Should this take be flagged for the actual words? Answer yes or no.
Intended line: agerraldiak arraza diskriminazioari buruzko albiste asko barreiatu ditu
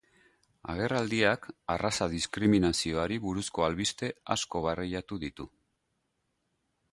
no